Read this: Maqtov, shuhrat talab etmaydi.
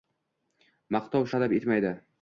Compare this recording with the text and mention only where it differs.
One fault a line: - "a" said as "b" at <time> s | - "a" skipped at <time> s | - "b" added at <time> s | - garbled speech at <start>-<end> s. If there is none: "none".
- "shuhrat" skipped at 1.3 s